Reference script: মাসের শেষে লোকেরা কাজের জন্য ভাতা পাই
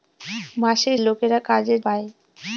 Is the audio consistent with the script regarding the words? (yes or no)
no